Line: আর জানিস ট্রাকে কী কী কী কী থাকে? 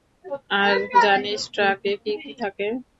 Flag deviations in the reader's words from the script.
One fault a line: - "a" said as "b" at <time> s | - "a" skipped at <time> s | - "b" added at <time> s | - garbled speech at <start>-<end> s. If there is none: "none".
- "কী কী" skipped at 2.3 s